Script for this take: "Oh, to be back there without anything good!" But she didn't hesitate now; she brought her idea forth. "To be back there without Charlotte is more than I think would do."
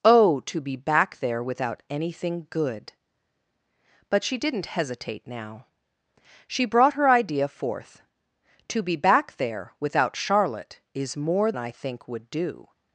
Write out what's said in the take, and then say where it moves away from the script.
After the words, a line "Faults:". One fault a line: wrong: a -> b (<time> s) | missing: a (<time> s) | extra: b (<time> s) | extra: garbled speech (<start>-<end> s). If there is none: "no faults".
"Oh, to be back there without anything good!" But she didn't hesitate now; she brought her idea forth. "To be back there without Charlotte is more I think would do."
Faults:
missing: than (11.5 s)